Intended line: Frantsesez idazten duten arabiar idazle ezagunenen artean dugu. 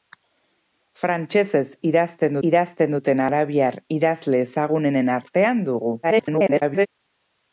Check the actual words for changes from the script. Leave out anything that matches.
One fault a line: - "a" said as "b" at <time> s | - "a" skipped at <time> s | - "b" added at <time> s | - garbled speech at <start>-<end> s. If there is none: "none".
- "idazten" added at 2.5 s
- garbled speech at 6.0-6.9 s